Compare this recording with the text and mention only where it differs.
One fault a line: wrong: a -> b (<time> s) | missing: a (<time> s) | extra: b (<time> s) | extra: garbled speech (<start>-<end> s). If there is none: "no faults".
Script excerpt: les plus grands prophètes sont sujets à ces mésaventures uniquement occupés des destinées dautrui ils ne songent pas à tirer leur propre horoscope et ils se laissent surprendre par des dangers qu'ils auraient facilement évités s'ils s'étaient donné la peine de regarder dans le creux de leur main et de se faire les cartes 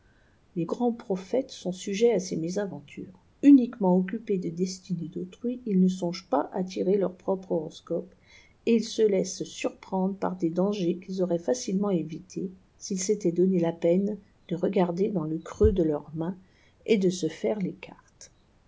missing: plus (0.7 s)